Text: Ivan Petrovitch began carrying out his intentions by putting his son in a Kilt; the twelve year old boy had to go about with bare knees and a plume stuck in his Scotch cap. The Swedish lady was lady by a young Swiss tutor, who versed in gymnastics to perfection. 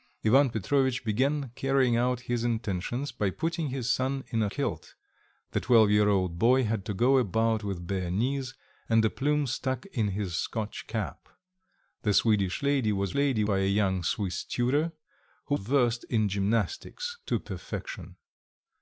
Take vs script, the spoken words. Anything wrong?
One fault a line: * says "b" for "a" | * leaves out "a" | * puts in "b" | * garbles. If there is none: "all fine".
all fine